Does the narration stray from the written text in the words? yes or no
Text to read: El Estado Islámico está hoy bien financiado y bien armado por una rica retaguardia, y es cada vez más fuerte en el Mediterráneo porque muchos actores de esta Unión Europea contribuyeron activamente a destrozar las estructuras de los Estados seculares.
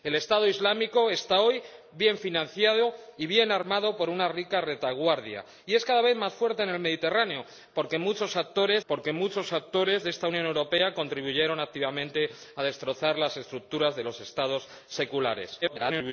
yes